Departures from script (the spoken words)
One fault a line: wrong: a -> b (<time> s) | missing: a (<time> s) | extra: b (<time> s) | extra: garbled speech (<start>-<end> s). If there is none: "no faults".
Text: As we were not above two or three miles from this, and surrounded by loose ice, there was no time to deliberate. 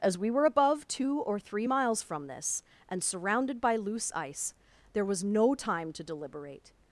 missing: not (0.5 s)